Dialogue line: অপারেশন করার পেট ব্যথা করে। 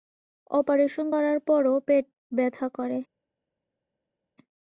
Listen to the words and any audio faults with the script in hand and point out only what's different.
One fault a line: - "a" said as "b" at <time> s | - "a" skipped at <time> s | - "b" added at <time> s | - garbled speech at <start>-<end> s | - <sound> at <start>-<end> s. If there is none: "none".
- "পরও" added at 1.5 s